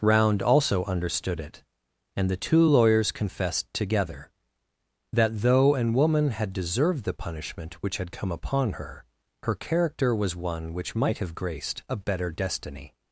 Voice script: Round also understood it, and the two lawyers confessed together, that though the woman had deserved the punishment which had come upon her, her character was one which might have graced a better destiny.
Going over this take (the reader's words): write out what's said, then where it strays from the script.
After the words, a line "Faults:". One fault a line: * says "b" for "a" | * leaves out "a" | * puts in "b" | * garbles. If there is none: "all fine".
Round also understood it, and the two lawyers confessed together, that though an woman had deserved the punishment which had come upon her, her character was one which might have graced a better destiny.
Faults:
* says "an" for "the"